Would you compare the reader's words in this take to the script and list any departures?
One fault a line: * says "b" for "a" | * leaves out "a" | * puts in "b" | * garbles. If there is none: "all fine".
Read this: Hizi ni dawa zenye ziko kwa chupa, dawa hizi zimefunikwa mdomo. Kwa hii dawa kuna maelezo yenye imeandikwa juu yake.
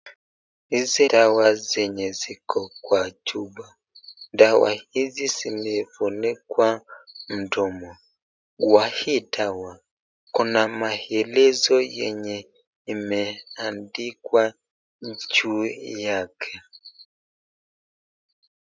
* leaves out "ni"